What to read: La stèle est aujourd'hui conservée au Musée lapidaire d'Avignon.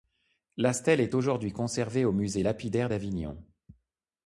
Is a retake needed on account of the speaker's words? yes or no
no